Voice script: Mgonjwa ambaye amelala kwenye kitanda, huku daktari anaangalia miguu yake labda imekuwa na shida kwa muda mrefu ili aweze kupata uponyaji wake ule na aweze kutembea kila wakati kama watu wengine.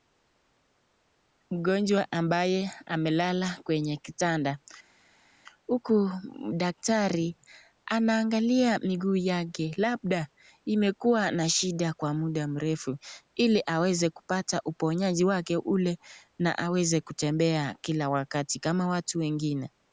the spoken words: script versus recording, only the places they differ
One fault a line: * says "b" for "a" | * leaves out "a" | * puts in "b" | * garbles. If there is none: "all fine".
all fine